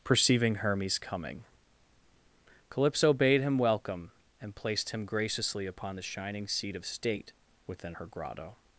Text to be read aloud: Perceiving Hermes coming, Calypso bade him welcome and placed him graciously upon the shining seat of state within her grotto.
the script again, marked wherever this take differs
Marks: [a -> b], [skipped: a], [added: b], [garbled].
Perceiving Hermes coming, Calypso bade him welcome and placed him graciously upon the shining seat of state within her grotto.